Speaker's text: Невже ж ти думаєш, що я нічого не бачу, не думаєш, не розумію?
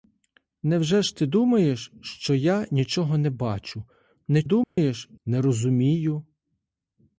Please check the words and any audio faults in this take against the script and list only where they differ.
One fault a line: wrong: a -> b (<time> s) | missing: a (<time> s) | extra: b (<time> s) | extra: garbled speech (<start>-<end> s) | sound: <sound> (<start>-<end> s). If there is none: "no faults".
sound: dropout (4.6-4.8 s)